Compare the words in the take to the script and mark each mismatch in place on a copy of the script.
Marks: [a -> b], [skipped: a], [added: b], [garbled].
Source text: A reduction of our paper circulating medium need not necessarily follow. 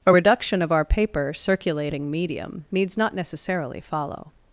A reduction of our paper circulating medium [need -> needs] not necessarily follow.